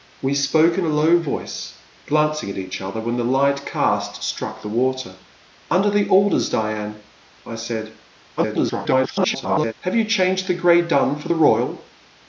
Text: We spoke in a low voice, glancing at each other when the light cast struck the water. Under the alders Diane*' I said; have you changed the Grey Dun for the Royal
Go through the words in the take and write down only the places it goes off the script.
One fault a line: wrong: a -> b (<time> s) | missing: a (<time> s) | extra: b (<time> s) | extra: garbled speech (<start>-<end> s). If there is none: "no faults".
extra: garbled speech (8.4-9.7 s)